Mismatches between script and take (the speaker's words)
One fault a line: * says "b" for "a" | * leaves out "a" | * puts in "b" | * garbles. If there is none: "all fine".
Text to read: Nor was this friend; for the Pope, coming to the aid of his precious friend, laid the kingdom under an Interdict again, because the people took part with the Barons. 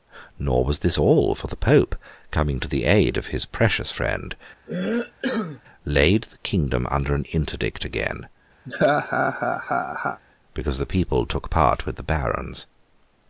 * says "all" for "friend"